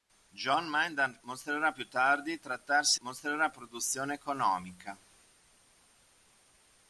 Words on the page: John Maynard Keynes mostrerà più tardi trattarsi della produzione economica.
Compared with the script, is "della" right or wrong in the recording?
wrong